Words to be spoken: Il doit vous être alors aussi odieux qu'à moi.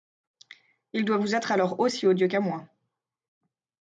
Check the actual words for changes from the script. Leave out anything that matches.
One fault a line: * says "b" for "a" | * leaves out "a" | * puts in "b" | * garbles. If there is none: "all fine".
all fine